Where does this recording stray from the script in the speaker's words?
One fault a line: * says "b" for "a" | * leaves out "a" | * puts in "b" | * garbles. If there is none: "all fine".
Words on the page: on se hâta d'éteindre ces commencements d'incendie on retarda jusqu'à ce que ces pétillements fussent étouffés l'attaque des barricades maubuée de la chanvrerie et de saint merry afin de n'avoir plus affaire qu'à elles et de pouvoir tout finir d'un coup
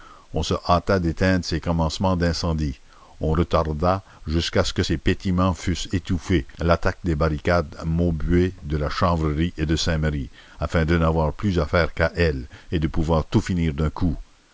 all fine